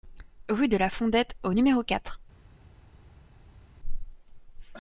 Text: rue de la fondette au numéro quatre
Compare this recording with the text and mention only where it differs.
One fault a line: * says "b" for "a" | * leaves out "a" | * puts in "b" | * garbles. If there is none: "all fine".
all fine